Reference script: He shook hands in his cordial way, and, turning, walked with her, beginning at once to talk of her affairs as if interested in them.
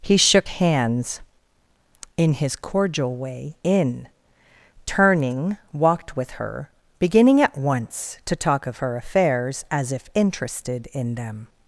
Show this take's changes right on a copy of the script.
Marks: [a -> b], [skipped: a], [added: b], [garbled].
He shook hands in his cordial way, [and, -> in] turning, walked with her, beginning at once to talk of her affairs as if interested in them.